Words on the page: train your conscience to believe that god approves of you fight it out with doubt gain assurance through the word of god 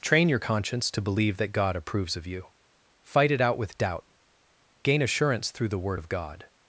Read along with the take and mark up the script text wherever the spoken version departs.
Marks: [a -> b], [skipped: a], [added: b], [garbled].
train your conscience to believe that god approves of you fight it out with doubt gain assurance through the word of god